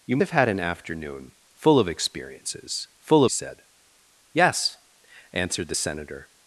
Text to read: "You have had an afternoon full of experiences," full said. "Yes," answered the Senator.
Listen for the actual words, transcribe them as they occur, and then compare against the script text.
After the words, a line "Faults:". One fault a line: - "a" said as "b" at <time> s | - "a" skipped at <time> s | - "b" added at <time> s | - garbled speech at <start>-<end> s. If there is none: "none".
"You have had an afternoon full of experiences," full said. "Yes," answered the Senator.
Faults:
none